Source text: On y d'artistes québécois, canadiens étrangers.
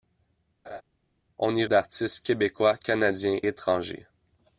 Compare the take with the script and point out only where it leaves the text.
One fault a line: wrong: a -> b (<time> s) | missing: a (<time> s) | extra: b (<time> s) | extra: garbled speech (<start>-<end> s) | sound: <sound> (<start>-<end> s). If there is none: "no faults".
sound: laugh (0.6-0.8 s)